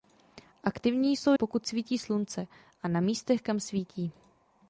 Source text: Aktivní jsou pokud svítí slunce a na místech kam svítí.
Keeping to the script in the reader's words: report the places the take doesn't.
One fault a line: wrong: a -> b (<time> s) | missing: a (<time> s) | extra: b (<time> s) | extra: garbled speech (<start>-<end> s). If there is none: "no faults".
no faults